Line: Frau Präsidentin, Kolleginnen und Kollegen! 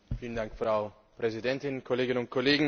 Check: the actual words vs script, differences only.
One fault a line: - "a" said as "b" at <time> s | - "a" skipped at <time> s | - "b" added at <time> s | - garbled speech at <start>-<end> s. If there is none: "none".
none